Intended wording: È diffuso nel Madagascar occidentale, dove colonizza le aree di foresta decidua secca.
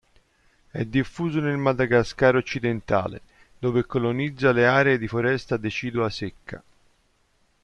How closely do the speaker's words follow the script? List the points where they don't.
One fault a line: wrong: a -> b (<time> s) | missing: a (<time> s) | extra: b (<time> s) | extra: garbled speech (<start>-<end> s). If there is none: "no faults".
no faults